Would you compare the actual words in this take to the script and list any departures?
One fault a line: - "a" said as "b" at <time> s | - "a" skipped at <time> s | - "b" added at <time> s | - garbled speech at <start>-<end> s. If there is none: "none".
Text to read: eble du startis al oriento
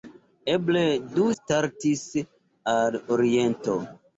none